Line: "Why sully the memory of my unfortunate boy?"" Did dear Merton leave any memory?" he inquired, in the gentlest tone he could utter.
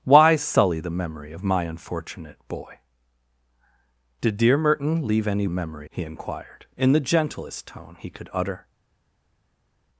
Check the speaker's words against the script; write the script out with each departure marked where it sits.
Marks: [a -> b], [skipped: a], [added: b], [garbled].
"Why sully the memory of my unfortunate boy?"" Did dear Merton leave any memory?" he inquired, in the gentlest tone he could utter.